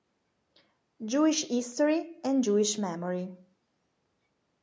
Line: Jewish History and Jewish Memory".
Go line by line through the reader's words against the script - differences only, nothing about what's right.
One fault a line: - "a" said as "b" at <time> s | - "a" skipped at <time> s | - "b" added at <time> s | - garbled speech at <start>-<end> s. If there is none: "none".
none